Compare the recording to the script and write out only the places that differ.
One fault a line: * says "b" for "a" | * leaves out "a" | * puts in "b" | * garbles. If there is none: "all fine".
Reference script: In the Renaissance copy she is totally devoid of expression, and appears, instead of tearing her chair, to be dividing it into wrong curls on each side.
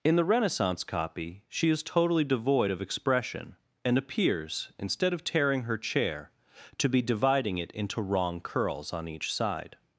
all fine